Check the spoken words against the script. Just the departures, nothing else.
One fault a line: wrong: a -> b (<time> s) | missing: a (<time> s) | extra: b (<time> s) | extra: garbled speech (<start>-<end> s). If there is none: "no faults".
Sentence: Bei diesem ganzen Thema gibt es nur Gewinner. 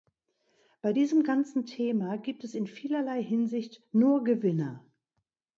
extra: in vielerlei Hinsicht (2.5 s)